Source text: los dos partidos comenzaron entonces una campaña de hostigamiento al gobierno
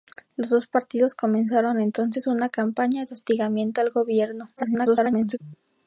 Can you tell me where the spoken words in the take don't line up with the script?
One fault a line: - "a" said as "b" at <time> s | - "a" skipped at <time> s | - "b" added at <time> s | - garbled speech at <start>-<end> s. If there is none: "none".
- garbled speech at 4.6-5.4 s